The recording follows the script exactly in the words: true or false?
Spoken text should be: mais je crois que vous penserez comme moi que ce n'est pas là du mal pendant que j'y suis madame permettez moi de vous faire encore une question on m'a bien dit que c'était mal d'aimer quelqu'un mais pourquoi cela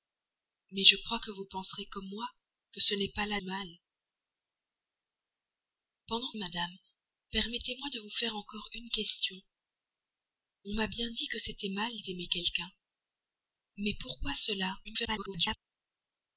false